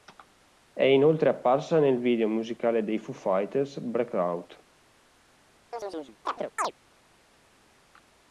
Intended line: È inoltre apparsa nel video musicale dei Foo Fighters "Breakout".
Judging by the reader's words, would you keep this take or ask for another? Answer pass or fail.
pass